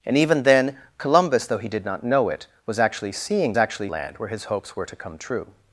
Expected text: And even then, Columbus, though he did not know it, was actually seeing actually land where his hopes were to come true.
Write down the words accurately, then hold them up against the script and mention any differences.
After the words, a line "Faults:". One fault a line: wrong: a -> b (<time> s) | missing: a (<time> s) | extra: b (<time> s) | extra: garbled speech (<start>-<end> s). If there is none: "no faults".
And even then, Columbus, though he did not know it, was actually seeing actually land where his hopes were to come true.
Faults:
no faults